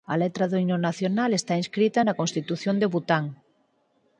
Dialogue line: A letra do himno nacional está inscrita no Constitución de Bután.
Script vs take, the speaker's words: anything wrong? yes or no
yes